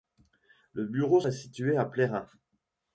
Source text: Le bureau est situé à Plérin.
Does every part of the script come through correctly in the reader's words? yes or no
yes